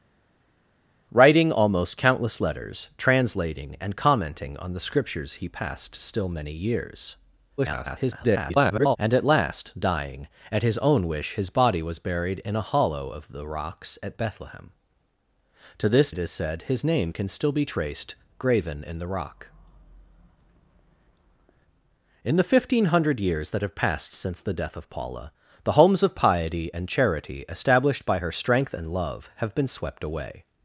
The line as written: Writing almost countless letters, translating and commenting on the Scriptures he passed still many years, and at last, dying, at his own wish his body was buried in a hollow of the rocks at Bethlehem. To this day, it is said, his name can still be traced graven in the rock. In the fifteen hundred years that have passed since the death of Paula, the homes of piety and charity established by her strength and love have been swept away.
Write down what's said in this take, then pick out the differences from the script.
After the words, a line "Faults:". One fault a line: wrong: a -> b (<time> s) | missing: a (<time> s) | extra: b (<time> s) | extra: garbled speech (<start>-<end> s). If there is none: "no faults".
Writing almost countless letters, translating and commenting on the Scriptures he passed still many years, [garbled] and at last, dying, at his own wish his body was buried in a hollow of the rocks at Bethlehem. To this it is said, his name can still be traced graven in the rock. In the fifteen hundred years that have passed since the death of Paula, the homes of piety and charity established by her strength and love have been swept away.
Faults:
extra: garbled speech (7.6-9.0 s)
missing: day (16.1 s)